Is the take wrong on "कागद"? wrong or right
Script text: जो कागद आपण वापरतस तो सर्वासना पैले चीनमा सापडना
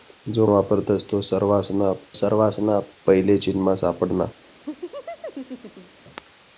wrong